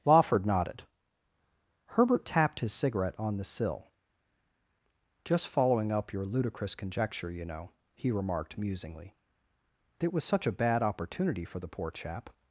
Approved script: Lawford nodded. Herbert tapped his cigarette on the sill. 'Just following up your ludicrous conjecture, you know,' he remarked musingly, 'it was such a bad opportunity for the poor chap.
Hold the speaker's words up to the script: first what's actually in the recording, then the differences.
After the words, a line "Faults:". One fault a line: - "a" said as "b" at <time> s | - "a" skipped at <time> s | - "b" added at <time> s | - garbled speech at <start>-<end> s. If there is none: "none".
Lawford nodded. Herbert tapped his cigarette on the sill. 'Just following up your ludicrous conjecture, you know,' he remarked musingly, 'it was such a bad opportunity for the poor chap.
Faults:
none